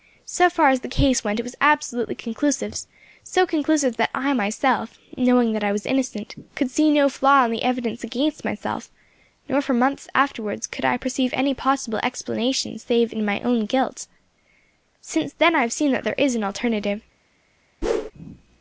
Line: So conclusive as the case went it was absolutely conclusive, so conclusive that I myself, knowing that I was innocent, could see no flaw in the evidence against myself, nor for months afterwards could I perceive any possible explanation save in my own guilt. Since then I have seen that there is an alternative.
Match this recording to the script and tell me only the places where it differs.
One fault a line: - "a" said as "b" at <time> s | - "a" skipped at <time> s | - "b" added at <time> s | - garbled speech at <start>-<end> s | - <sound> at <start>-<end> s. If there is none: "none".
- "conclusive" said as "far" at 0.5 s
- whoosh at 17.8-18.1 s